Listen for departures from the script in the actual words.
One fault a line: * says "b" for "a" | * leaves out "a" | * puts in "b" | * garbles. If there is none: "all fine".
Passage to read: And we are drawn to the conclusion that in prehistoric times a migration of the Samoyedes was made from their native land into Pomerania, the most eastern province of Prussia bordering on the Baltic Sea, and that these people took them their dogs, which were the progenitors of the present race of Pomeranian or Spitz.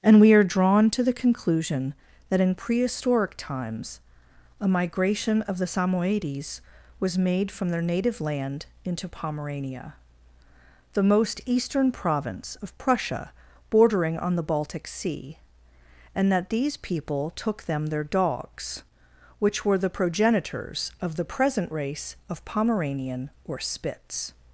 all fine